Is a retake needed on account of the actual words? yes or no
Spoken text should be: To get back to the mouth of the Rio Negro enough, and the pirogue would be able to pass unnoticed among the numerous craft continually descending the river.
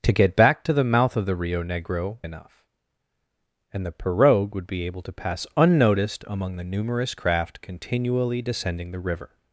no